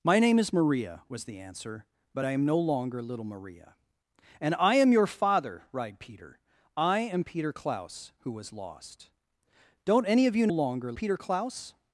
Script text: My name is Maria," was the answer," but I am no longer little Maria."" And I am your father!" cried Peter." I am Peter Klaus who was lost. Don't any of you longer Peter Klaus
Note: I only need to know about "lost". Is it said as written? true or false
true